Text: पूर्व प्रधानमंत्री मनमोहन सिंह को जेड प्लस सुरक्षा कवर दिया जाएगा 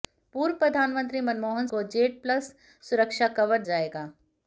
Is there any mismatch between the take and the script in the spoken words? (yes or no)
yes